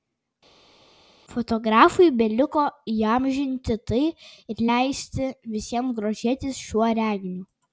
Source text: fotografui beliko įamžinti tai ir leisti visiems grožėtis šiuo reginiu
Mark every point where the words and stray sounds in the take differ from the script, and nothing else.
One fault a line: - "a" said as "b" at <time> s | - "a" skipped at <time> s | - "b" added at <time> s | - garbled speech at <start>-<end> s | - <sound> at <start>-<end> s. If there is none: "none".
none